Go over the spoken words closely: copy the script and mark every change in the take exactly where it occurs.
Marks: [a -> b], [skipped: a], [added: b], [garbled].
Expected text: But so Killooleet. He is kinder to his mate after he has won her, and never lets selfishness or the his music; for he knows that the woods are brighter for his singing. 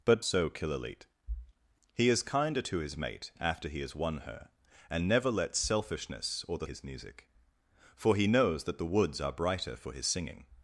But so Killooleet. He is kinder to his mate after he has won her, and never lets selfishness or the his music; for he knows that the woods are brighter for his singing.